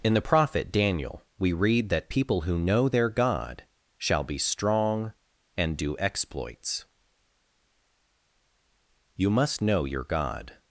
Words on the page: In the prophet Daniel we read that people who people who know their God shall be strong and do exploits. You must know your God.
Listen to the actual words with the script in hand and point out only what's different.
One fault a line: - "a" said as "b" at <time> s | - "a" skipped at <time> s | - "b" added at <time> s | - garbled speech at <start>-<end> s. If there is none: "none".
- "people who" skipped at 2.6 s